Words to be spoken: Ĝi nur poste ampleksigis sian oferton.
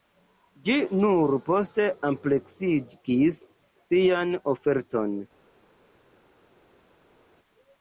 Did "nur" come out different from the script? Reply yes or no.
no